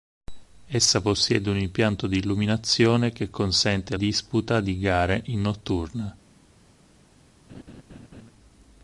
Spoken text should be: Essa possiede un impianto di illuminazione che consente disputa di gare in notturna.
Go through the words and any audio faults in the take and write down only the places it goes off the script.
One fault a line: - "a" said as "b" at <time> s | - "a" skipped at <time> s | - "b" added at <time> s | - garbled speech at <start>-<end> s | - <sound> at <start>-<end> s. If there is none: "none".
- laugh at 7.5-8.3 s